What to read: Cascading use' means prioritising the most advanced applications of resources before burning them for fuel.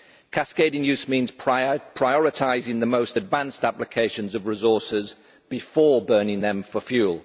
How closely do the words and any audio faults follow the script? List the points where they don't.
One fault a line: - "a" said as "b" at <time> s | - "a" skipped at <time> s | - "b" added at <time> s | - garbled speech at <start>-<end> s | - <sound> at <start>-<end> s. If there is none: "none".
none